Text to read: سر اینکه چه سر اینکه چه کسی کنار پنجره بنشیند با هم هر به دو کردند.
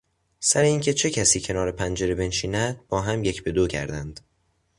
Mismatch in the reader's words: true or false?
true